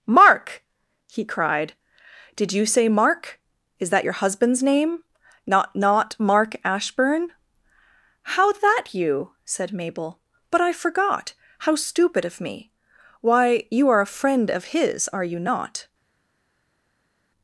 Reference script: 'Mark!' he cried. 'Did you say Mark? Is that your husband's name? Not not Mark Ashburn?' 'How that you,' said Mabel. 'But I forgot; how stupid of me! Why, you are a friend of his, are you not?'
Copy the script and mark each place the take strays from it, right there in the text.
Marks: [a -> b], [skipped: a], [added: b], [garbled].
'Mark!' he cried. 'Did you say Mark? Is that your husband's name? Not not Mark Ashburn?' 'How that you,' said Mabel. 'But I forgot; how stupid of me! Why, you are a friend of his, are you not?'